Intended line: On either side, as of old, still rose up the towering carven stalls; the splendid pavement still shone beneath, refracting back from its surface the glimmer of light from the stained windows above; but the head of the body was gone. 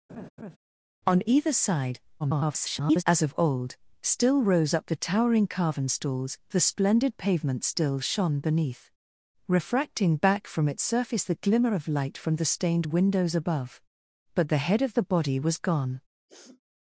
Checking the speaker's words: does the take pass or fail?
fail